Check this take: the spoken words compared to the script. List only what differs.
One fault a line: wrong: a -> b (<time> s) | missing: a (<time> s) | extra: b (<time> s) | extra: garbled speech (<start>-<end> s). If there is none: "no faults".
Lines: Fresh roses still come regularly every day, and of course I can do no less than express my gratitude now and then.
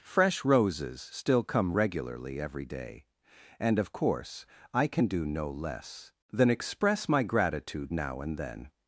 no faults